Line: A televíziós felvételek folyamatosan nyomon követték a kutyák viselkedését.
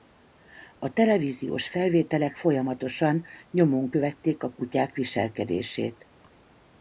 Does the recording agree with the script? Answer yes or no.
yes